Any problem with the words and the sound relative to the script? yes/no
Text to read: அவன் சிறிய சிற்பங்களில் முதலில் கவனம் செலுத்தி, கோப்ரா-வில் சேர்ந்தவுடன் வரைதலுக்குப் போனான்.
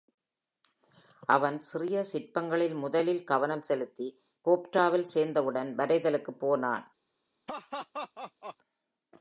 yes